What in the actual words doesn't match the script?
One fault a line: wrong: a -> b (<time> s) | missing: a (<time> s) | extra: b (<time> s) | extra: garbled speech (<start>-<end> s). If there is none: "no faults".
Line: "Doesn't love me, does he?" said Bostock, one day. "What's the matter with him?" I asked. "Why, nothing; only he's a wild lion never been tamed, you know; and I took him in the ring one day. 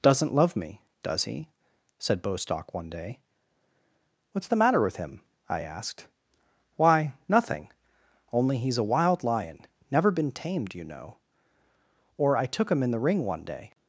wrong: and -> or (12.2 s)